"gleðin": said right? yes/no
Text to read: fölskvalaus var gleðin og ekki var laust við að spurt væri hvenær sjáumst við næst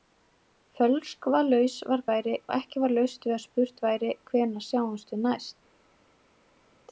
no